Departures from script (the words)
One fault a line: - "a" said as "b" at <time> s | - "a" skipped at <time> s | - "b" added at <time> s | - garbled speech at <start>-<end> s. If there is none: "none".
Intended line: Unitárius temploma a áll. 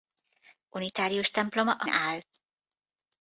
none